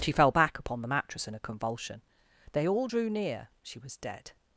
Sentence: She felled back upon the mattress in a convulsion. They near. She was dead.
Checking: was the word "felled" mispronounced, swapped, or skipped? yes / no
yes